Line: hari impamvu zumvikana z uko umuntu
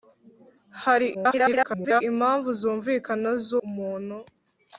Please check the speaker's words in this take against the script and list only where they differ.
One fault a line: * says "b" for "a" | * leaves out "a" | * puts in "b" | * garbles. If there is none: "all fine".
* garbles
* leaves out "uko"